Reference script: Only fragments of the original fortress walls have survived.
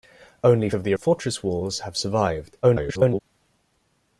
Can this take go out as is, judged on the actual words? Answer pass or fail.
fail